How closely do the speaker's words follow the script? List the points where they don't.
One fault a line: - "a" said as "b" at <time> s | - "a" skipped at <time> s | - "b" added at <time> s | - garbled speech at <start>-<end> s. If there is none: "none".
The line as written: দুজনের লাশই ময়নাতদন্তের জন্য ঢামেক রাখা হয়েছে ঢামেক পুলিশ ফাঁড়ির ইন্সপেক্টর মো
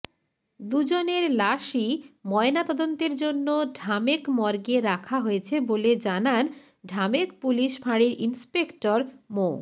- "মর্গে" added at 4.3 s
- "বলে জানান" added at 5.6 s